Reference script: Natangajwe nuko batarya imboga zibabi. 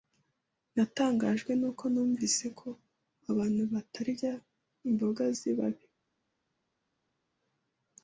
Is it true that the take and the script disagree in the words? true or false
true